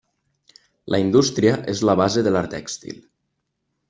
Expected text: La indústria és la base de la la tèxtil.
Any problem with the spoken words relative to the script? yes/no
no